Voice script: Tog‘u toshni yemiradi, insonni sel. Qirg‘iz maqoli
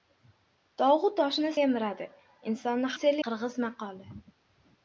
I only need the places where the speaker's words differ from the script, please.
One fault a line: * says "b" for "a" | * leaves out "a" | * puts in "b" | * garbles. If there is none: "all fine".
all fine